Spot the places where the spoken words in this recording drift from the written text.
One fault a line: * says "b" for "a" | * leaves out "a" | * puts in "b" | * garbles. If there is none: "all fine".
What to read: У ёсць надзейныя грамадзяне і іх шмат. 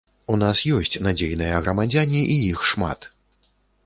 * puts in "нас"